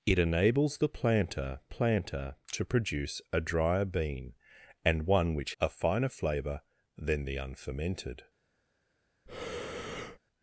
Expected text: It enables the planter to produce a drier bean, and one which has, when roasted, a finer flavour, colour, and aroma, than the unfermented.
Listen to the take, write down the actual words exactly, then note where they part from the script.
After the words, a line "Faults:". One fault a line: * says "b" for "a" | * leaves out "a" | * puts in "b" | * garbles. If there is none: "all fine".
It enables the planter planter to produce a drier bean, and one which a finer flavour, than the unfermented.
Faults:
* puts in "planter"
* leaves out "has when roasted"
* leaves out "colour and aroma"